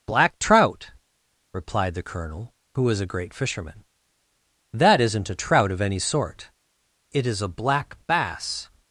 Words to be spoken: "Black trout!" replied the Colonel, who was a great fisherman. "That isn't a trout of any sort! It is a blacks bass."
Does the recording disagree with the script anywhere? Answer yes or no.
yes